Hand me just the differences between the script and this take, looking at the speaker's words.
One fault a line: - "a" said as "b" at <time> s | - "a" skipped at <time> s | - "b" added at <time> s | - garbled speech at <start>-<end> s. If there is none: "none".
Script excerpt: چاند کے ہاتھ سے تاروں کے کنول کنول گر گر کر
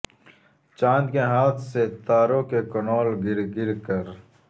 - "کنول" skipped at 3.1 s